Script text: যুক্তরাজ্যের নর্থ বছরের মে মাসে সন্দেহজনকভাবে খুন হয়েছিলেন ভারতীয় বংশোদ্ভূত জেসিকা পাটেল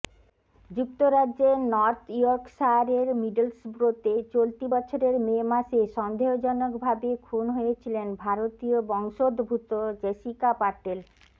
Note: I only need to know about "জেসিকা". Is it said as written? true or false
true